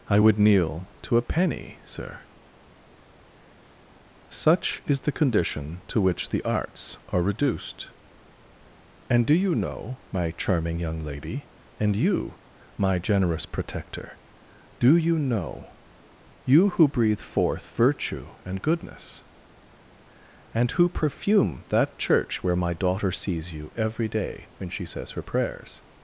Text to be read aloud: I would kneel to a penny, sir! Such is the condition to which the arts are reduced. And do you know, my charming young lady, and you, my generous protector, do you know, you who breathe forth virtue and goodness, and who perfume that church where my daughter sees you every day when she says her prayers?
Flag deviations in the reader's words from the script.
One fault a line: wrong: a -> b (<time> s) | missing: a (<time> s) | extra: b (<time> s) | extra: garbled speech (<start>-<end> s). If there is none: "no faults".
no faults